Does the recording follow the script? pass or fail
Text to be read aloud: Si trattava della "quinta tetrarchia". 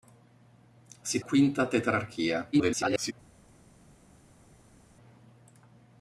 fail